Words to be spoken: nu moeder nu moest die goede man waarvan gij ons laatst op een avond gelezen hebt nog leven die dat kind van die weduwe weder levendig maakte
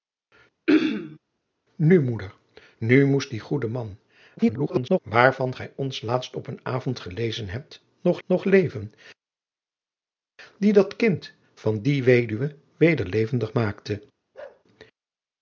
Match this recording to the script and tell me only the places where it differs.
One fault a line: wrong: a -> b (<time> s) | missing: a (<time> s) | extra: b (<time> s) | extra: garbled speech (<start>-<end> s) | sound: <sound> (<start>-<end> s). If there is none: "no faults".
sound: throat clearing (0.7-1.2 s)
extra: garbled speech (4.4-5.0 s)
extra: nog (8.3 s)
sound: bark (14.3-14.6 s)